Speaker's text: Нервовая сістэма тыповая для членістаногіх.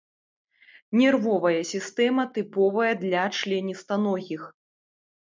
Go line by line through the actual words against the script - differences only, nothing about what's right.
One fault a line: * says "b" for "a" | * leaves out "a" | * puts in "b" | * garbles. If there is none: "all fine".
all fine